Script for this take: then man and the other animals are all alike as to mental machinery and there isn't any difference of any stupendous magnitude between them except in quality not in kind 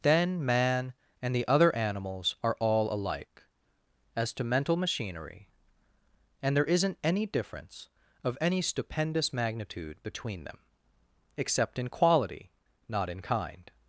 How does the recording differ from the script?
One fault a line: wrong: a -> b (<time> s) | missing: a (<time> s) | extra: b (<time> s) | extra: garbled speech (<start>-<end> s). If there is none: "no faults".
no faults